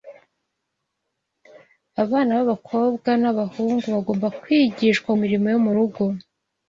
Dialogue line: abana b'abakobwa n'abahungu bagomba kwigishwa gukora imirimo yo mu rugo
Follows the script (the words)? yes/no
no